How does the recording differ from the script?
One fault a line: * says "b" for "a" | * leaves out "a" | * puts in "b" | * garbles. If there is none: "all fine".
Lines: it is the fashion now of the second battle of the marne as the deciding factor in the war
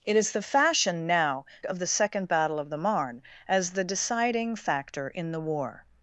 all fine